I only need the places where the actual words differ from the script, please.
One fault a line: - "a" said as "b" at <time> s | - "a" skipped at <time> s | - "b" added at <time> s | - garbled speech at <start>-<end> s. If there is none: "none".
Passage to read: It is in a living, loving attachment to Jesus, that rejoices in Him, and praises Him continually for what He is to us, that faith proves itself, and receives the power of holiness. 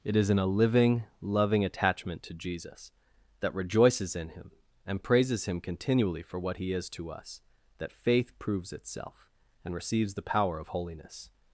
none